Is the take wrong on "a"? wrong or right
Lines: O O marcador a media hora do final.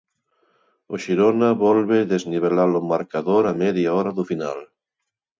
right